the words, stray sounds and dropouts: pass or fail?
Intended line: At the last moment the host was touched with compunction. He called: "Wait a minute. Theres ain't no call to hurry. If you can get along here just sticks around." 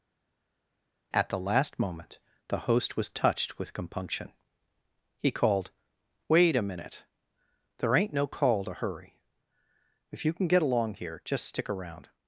fail